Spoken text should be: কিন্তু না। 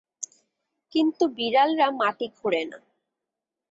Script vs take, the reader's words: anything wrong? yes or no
yes